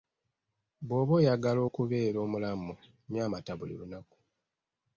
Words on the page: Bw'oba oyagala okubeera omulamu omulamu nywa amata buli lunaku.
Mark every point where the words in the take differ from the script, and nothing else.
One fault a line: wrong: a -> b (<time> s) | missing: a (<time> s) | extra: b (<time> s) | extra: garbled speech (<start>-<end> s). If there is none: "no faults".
missing: omulamu (2.7 s)